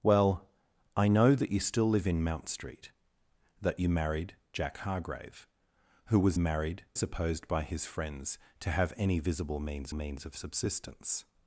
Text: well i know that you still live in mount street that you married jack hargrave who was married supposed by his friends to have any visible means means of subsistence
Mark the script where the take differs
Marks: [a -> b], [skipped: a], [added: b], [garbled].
well i know that you still live in mount street that you married jack hargrave who was married supposed by his friends to have any visible means means of subsistence